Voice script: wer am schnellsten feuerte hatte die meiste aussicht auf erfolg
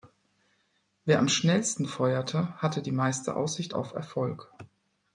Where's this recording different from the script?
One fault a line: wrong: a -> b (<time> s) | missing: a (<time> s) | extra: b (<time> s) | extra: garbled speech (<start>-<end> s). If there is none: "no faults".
no faults